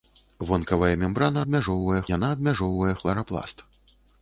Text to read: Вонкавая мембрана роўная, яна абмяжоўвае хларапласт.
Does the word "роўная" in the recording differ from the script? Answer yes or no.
yes